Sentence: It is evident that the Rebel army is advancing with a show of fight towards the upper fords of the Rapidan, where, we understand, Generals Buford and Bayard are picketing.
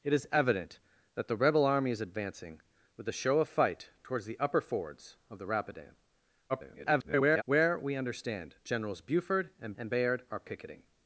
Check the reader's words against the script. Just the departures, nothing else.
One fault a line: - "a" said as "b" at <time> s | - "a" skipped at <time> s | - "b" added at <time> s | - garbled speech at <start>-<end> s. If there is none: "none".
- garbled speech at 6.5-7.4 s
- "and" added at 9.8 s